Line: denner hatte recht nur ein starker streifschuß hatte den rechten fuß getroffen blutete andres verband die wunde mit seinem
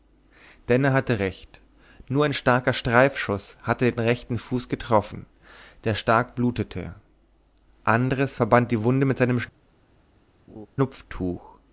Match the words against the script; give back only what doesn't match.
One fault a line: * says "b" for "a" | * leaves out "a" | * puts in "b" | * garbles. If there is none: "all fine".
* puts in "der stark"